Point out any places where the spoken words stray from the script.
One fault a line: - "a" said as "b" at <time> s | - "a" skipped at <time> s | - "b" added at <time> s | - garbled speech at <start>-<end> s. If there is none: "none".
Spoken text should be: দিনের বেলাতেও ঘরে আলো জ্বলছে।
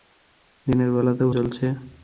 - "ঘরে আলো" skipped at 1.3 s